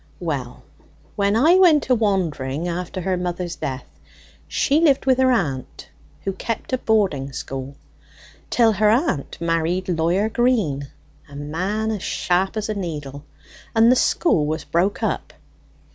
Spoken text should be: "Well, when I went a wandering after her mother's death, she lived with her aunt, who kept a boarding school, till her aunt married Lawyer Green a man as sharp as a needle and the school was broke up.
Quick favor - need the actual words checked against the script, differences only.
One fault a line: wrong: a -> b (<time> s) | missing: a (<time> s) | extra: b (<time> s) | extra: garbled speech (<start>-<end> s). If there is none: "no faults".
no faults